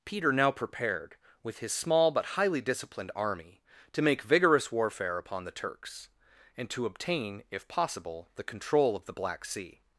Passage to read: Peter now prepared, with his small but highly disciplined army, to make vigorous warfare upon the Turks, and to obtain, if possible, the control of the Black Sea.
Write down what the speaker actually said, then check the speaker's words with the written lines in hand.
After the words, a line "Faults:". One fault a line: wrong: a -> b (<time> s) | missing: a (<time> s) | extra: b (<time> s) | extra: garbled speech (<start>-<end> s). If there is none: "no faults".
Peter now prepared, with his small but highly disciplined army, to make vigorous warfare upon the Turks, and to obtain, if possible, the control of the Black Sea.
Faults:
no faults